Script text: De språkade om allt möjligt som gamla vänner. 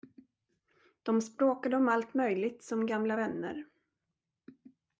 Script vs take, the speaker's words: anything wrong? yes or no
no